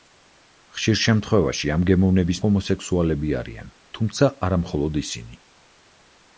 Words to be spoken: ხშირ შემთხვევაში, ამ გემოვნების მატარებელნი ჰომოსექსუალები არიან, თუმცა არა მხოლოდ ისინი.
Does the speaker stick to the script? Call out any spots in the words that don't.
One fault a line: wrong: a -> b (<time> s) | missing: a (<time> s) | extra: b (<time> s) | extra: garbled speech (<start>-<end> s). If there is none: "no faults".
missing: მატარებელნი (2.4 s)